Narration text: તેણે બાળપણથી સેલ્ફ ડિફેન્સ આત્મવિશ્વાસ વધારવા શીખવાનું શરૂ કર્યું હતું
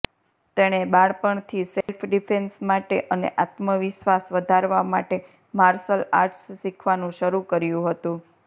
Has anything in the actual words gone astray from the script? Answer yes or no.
yes